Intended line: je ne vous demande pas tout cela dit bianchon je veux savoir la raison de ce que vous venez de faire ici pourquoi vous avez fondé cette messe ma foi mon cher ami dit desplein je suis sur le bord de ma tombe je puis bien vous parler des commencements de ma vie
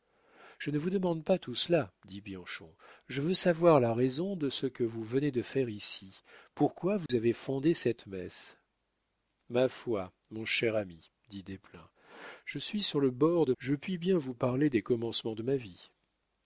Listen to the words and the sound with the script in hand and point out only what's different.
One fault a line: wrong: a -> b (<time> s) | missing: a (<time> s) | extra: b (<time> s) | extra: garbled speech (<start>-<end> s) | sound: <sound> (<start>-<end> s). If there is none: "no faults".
sound: dropout (7.1-7.1 s)
missing: ma tombe (13.5 s)